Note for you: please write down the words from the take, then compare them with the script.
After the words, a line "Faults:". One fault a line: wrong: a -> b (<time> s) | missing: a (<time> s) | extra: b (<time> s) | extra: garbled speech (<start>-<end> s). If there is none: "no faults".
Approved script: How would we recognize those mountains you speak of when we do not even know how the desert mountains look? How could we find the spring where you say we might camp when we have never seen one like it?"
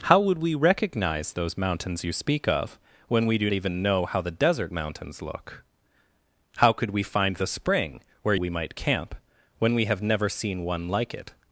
How would we recognize those mountains you speak of when we do even know how the desert mountains look? How could we find the spring where we might camp when we have never seen one like it?"
Faults:
missing: not (3.5 s)
missing: you say (8.4 s)